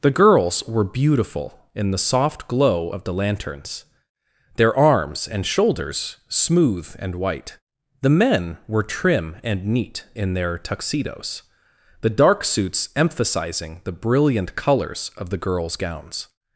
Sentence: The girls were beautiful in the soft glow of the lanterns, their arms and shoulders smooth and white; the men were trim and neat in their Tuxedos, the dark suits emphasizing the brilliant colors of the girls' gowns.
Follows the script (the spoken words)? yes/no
yes